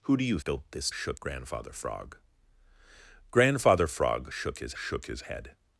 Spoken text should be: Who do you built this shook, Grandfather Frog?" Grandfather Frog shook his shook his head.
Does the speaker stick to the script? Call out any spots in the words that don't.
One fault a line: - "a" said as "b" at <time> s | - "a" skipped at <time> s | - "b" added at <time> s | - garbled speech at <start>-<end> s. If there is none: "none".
none